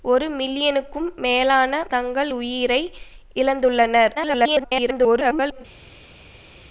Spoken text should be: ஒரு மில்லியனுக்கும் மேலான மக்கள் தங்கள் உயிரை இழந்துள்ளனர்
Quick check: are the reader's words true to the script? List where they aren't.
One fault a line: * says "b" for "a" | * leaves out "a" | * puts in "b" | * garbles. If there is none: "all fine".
* leaves out "மக்கள்"
* garbles